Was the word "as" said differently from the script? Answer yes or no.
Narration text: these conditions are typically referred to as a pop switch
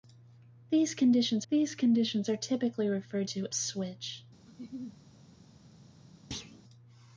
yes